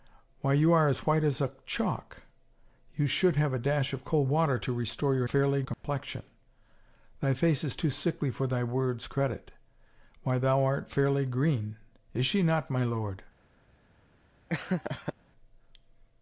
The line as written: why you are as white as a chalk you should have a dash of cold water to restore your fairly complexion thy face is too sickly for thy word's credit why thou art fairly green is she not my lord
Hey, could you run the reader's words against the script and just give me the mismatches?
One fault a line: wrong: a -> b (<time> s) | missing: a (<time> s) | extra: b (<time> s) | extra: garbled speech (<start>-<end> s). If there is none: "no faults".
no faults